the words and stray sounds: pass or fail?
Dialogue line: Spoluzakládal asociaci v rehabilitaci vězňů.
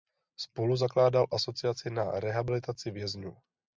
fail